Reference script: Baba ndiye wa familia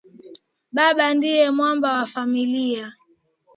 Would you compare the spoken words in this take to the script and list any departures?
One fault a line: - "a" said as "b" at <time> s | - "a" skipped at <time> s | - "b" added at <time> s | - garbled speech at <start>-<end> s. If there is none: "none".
- "mwamba" added at 1.5 s